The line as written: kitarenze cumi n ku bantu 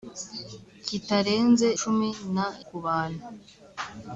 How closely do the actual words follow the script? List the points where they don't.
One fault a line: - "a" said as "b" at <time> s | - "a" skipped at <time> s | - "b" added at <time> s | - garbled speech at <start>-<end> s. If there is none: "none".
none